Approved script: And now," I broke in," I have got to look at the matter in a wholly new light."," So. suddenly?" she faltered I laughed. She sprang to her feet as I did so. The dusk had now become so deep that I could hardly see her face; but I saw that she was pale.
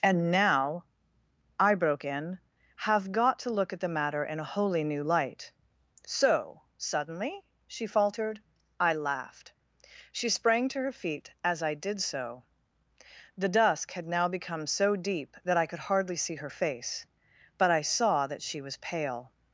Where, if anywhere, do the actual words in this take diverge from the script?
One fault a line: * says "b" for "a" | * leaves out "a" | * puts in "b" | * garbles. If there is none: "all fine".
* leaves out "I"